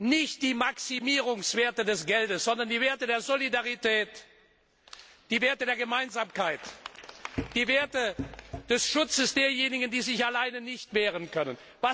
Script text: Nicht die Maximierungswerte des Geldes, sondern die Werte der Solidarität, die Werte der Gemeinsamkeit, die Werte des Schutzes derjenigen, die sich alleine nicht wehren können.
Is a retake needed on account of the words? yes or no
no